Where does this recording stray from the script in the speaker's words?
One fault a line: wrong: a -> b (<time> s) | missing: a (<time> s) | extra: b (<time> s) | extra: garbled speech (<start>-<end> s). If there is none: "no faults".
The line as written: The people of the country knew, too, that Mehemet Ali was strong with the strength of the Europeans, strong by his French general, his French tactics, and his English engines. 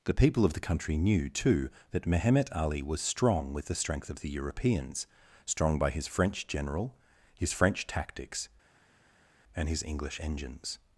no faults